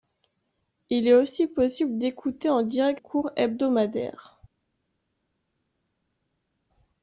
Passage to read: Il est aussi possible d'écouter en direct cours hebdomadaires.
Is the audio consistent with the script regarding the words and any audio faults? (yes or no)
yes